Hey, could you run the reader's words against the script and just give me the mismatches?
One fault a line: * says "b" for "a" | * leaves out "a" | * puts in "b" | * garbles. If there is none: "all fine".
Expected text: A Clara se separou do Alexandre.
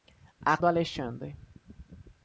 * leaves out "Clara se separou"